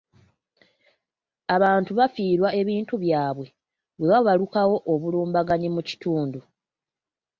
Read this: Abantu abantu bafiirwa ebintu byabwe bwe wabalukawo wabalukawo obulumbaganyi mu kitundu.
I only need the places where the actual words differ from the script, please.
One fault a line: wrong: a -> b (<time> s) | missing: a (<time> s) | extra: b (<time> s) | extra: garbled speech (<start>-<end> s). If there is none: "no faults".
missing: abantu (1.9 s)
missing: wabalukawo (4.8 s)